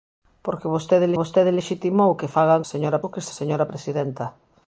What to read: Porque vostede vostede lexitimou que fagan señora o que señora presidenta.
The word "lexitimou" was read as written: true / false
true